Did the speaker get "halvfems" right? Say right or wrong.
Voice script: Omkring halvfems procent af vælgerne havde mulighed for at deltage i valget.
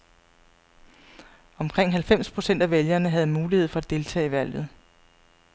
right